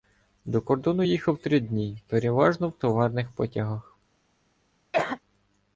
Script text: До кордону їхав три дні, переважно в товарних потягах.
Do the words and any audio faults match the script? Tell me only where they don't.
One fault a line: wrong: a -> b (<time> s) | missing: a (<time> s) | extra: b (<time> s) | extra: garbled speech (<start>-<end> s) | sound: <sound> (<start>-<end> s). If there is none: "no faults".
sound: cough (4.9-5.2 s)